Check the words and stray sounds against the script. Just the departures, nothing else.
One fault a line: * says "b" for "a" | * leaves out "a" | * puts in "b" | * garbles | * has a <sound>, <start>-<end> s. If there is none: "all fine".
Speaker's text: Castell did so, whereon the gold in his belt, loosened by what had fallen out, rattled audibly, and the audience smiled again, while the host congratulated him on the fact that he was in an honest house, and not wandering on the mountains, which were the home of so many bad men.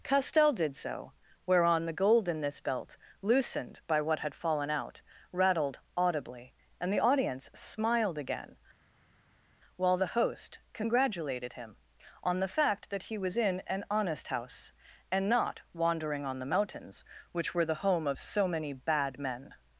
* says "this" for "his"